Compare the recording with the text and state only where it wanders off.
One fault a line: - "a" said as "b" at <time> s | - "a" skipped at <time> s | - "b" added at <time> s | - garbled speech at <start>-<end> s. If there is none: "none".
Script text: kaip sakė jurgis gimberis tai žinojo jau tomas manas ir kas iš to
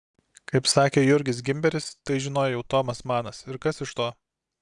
none